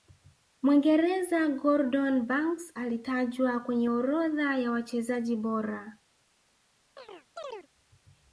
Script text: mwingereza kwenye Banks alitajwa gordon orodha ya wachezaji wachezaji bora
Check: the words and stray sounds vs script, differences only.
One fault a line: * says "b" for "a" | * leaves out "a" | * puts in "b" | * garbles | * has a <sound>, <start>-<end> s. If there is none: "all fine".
* says "gordon" for "kwenye"
* says "kwenye" for "gordon"
* leaves out "wachezaji"
* has a chirp, 7.0-7.7 s